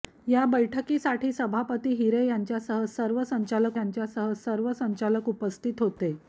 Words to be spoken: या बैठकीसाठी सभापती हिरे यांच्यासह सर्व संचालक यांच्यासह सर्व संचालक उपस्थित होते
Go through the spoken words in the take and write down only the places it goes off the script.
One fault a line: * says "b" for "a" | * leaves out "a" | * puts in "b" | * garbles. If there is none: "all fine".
all fine